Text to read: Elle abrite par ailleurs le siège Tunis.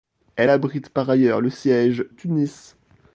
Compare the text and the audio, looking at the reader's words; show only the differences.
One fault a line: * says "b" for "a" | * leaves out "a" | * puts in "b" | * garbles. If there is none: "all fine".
all fine